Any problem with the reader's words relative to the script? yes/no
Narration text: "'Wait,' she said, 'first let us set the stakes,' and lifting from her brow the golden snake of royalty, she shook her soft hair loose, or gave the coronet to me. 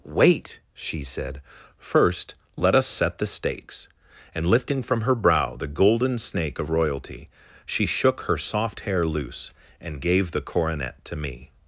yes